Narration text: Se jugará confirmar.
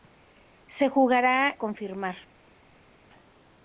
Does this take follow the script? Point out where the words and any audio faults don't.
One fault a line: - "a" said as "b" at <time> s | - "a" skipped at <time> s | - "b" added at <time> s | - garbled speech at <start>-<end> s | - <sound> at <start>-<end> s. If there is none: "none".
none